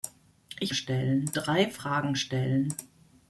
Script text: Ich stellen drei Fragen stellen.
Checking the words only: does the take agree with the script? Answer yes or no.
yes